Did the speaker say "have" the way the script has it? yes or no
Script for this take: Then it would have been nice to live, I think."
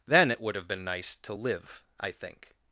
yes